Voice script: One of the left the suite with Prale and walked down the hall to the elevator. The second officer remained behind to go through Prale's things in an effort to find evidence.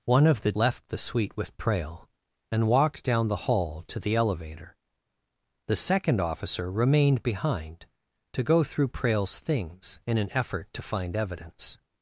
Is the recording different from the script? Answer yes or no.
no